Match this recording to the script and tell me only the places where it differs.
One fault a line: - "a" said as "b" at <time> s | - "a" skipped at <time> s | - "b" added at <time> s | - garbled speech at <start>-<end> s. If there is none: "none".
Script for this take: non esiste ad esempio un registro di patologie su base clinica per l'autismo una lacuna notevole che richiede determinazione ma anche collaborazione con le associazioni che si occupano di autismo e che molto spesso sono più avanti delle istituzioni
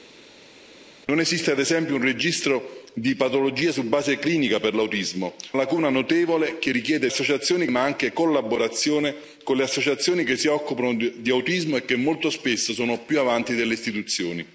- "una" skipped at 5.4 s
- "determinazione" said as "associazioni" at 7.1 s